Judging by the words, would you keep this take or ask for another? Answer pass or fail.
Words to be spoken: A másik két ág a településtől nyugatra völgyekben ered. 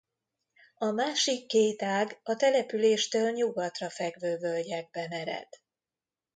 fail